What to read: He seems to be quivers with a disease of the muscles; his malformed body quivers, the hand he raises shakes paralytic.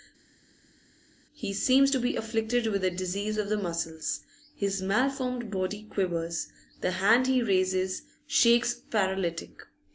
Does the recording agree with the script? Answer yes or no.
no